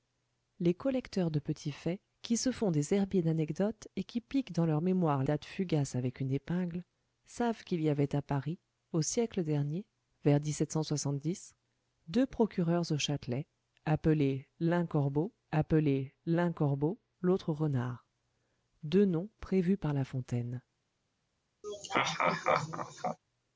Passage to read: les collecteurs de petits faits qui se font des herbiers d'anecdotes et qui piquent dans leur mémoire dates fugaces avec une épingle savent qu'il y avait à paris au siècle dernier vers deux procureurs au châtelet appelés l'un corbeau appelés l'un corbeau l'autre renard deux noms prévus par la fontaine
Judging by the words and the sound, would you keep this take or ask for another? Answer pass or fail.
fail